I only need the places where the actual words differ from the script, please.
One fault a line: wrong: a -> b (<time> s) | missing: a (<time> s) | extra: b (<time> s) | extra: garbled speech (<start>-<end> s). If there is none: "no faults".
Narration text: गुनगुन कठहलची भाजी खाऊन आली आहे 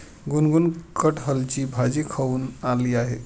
no faults